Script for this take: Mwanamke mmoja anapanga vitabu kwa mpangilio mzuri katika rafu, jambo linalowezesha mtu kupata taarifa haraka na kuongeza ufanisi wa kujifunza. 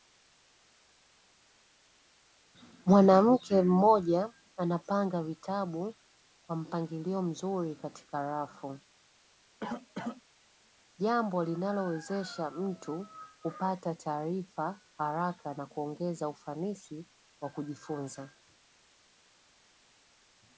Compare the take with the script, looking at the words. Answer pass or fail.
pass